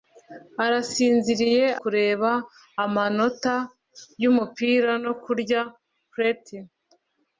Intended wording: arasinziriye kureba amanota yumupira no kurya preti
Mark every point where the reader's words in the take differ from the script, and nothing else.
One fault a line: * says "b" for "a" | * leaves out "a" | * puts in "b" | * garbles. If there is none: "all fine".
all fine